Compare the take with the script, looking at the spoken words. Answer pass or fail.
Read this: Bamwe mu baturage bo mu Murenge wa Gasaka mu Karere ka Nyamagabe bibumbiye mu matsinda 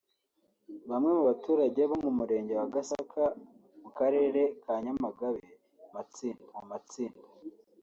fail